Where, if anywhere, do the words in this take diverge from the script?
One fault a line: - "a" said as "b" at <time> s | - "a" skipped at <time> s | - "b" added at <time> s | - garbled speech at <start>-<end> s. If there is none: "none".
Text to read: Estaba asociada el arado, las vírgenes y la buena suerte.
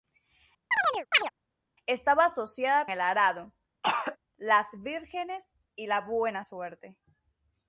none